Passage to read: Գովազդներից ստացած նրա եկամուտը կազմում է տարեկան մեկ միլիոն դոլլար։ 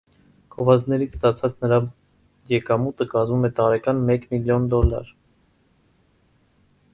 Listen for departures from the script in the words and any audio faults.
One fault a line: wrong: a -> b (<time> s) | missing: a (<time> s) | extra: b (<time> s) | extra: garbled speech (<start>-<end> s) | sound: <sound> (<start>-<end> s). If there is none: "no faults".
no faults